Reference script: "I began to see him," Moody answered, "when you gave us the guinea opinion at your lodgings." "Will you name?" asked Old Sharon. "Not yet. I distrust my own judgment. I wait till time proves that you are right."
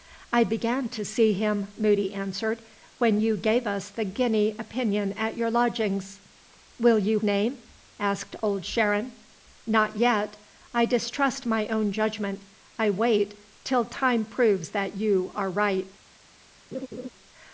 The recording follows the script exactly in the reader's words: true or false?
true